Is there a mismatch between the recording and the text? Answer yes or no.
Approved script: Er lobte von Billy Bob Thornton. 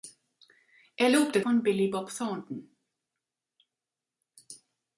no